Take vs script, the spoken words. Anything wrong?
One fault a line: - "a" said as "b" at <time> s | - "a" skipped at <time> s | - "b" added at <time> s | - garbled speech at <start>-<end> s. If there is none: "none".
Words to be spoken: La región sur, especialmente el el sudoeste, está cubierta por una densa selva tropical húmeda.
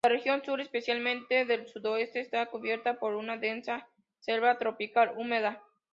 - "el" skipped at 1.7 s